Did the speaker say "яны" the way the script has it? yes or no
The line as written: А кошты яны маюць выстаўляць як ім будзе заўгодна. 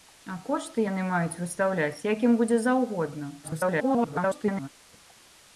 yes